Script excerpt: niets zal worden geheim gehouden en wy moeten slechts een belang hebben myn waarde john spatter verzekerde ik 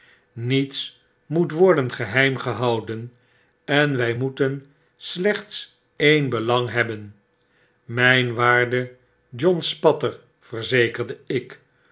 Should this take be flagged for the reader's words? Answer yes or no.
yes